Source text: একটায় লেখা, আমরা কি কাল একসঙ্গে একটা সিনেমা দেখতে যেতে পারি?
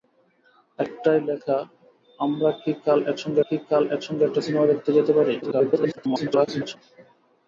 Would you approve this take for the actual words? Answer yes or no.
no